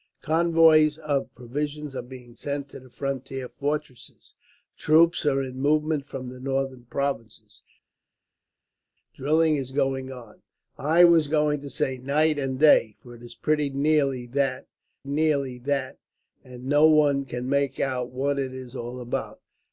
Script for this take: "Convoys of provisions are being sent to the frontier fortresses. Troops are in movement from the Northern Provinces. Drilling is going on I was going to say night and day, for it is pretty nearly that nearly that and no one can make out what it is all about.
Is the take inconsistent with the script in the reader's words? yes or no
no